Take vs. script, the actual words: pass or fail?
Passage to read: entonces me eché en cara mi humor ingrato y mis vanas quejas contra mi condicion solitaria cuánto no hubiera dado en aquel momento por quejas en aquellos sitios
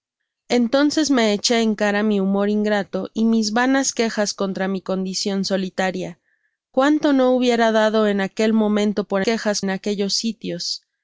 pass